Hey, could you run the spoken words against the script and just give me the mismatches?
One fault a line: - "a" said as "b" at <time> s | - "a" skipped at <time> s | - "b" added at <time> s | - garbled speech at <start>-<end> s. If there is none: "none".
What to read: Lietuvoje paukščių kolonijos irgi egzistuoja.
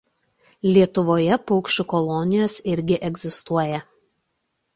none